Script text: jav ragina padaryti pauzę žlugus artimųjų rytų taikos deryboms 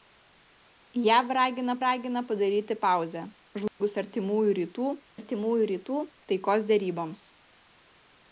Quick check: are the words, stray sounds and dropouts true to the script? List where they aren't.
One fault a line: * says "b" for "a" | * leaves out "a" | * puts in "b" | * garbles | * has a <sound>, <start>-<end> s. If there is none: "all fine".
* puts in "ragina"
* has a dropout, 3.7-3.8 s
* puts in "artimųjų rytų"